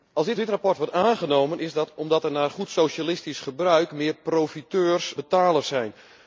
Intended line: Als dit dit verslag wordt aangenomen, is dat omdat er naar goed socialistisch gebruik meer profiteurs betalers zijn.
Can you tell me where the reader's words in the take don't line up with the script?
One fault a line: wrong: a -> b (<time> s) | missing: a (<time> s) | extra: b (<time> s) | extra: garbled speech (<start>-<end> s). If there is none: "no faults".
no faults